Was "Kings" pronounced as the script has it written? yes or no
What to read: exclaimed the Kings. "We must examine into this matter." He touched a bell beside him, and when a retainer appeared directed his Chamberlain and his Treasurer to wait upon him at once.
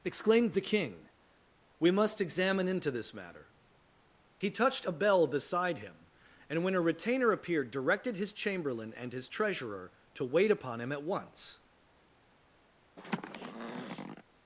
no